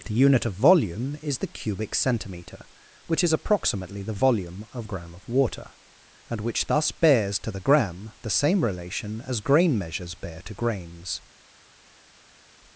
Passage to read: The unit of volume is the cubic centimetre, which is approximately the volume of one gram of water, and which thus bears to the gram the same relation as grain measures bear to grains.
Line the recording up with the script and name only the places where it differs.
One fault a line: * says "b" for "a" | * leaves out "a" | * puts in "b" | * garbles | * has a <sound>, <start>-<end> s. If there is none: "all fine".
* leaves out "one"